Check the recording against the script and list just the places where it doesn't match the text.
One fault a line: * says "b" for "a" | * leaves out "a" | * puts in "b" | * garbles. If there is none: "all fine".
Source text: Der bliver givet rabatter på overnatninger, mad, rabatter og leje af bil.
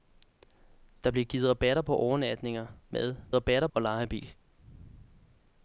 all fine